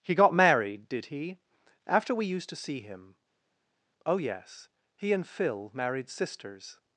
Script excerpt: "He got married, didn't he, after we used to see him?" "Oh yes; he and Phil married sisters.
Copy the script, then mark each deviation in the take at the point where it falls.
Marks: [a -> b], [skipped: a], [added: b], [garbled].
"He got married, [didn't -> did] he, after we used to see him?" "Oh yes; he and Phil married sisters.